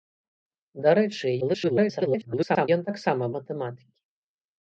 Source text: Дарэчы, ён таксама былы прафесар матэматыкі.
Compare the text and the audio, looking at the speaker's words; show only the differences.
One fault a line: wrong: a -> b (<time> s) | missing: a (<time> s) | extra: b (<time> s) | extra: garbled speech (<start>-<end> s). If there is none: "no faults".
extra: garbled speech (1.4-2.7 s)
missing: былы прафесар (3.2 s)